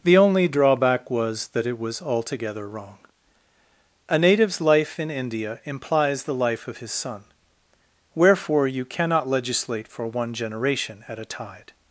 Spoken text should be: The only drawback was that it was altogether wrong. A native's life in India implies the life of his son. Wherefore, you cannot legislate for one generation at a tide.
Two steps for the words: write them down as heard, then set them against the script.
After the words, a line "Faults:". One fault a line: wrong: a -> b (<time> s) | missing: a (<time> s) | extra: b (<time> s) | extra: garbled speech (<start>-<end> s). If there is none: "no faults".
The only drawback was that it was altogether wrong. A native's life in India implies the life of his son. Wherefore, you cannot legislate for one generation at a tide.
Faults:
no faults